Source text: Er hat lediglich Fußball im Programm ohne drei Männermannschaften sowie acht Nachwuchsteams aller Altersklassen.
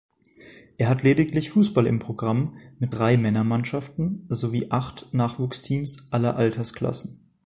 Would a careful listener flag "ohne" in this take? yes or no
yes